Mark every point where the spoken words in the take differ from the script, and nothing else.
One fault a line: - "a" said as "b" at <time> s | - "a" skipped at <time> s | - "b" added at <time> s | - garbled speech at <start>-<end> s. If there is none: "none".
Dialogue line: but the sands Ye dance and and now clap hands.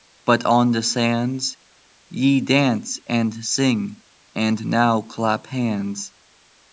- "on" added at 0.5 s
- "sing" added at 3.5 s